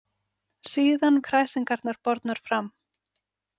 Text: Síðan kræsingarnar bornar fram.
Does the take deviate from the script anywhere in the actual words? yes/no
no